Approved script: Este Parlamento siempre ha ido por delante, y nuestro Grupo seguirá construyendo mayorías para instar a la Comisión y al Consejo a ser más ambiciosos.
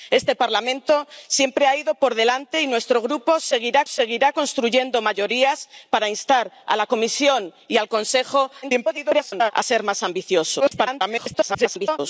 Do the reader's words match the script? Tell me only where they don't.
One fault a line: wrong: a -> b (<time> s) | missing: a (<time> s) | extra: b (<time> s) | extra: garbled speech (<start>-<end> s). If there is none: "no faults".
extra: seguirá (3.9 s)
extra: garbled speech (8.6-9.5 s)
extra: garbled speech (10.6-12.0 s)